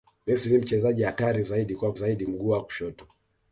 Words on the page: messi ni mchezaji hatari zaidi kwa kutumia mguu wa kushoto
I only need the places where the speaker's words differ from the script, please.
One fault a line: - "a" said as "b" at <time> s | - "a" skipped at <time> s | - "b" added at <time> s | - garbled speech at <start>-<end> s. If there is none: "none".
- "kutumia" said as "zaidi" at 1.9 s